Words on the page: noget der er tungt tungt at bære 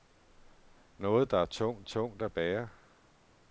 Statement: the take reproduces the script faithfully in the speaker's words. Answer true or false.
true